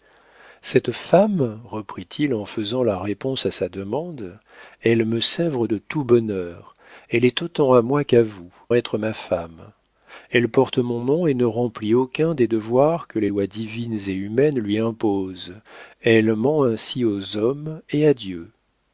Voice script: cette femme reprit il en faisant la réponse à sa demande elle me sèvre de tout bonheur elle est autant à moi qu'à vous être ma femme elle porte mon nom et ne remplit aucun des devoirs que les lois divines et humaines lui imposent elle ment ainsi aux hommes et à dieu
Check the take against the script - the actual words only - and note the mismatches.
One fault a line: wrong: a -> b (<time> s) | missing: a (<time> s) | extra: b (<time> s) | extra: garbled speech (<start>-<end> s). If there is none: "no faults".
no faults